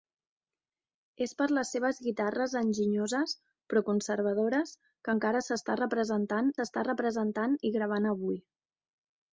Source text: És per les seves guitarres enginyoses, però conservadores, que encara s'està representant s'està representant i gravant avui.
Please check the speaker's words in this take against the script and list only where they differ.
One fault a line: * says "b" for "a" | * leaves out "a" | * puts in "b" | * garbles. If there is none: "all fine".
all fine